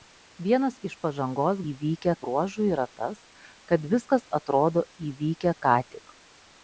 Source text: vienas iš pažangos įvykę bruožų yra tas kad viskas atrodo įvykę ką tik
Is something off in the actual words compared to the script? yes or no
no